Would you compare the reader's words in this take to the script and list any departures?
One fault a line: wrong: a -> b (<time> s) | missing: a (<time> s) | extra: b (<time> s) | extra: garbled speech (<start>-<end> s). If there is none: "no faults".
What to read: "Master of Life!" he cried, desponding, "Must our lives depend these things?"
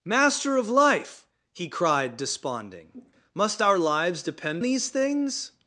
no faults